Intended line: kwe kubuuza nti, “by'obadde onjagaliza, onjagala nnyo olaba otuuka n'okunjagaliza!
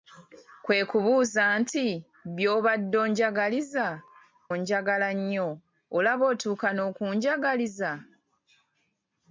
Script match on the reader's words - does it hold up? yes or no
yes